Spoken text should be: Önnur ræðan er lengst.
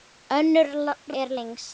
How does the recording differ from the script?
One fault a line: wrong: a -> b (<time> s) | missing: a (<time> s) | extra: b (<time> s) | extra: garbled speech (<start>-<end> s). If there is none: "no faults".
missing: ræðan (0.7 s)